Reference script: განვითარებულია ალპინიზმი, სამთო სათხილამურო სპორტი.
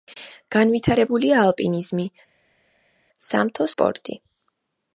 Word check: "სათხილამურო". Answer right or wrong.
wrong